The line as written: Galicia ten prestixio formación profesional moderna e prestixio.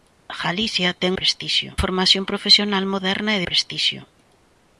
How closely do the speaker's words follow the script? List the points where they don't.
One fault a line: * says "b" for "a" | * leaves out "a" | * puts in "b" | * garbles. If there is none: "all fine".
all fine